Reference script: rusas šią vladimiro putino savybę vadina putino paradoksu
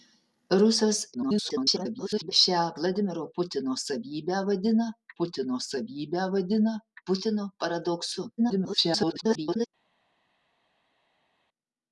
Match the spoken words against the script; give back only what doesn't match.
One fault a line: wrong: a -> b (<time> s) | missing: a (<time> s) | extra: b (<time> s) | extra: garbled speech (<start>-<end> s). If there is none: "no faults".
extra: garbled speech (1.1-2.3 s)
extra: savybę vadina putino (5.7 s)
extra: garbled speech (8.4-9.7 s)